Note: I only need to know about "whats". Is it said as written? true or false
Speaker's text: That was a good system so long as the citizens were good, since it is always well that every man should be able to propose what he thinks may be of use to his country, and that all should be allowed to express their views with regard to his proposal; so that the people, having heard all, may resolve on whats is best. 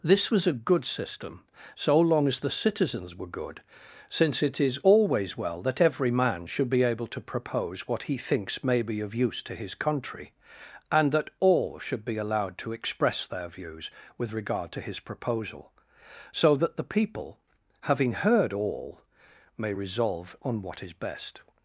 false